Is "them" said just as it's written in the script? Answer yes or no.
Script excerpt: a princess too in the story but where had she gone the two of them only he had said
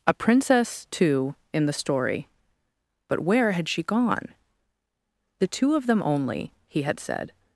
yes